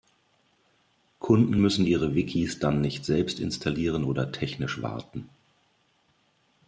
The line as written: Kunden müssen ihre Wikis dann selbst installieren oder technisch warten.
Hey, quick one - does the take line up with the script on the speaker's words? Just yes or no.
no